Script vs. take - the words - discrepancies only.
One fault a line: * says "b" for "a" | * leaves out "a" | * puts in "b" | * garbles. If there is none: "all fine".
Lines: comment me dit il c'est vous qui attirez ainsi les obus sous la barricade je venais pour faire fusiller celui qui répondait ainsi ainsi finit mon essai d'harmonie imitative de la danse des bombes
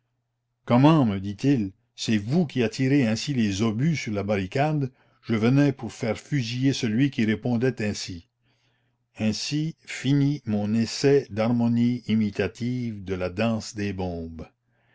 * says "sur" for "sous"